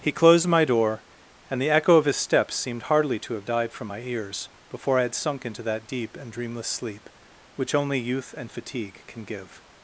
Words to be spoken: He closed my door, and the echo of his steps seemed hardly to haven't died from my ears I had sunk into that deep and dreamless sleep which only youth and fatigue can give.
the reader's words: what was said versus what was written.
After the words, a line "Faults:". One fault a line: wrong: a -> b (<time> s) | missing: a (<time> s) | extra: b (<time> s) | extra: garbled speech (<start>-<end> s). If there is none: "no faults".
He closed my door, and the echo of his steps seemed hardly to have died from my ears before I had sunk into that deep and dreamless sleep which only youth and fatigue can give.
Faults:
wrong: haven't -> have (3.3 s)
extra: before (4.7 s)